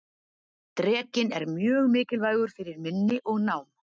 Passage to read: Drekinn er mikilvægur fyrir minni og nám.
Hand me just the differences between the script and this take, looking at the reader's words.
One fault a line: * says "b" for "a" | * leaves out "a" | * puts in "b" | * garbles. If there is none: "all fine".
* puts in "mjög"